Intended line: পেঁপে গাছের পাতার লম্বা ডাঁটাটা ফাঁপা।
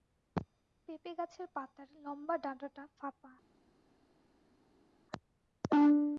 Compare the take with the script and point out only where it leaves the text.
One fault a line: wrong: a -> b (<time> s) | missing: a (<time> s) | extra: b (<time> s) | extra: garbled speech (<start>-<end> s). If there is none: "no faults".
no faults